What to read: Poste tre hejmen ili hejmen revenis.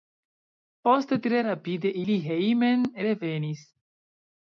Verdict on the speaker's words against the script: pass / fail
fail